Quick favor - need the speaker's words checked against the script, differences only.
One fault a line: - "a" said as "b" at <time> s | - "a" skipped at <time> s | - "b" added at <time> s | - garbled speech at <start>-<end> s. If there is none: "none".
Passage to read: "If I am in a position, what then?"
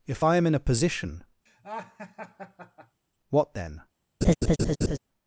none